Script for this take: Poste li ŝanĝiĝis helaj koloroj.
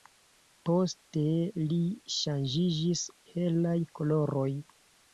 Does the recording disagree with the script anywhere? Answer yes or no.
no